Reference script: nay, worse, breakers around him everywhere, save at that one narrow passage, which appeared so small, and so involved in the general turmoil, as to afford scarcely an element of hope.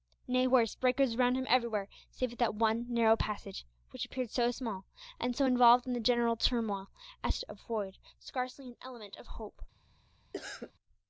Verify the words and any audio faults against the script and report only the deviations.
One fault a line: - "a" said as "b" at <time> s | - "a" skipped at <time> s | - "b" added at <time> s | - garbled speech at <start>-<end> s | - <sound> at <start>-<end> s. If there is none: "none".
- cough at 10.3-10.7 s